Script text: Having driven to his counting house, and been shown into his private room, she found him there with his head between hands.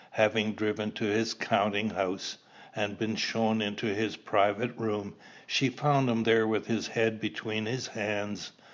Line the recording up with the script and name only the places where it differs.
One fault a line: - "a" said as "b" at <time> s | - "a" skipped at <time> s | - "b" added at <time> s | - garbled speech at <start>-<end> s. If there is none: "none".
- "his" added at 7.6 s